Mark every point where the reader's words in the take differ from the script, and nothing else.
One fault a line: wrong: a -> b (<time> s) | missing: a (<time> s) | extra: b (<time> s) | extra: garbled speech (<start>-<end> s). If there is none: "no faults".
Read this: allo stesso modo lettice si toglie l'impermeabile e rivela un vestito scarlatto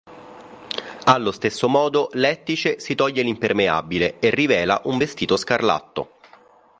no faults